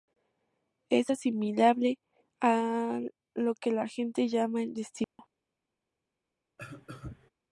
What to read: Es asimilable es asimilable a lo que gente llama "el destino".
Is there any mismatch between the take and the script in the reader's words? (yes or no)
yes